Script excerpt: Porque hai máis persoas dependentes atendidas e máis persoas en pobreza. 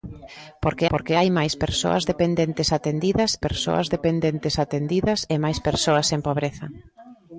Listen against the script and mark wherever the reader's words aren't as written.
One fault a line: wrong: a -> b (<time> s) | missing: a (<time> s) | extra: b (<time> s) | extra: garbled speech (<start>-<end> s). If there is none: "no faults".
extra: porque (0.9 s)
extra: persoas dependentes atendidas (3.4 s)